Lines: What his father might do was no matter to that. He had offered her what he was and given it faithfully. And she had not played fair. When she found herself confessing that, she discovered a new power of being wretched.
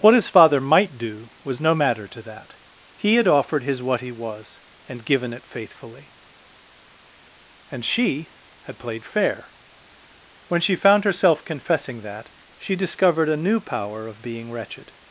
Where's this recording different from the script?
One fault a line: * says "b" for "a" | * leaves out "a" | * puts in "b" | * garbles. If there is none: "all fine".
* says "his" for "her"
* leaves out "not"